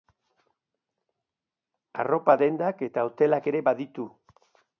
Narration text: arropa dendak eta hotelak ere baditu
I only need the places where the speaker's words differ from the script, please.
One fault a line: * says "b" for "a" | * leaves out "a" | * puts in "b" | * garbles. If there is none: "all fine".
all fine